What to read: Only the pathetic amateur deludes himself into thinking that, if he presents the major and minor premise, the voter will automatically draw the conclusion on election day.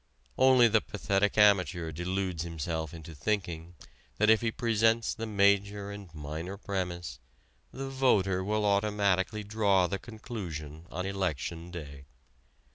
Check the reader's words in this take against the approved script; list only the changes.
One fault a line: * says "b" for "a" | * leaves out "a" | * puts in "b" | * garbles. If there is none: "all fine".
all fine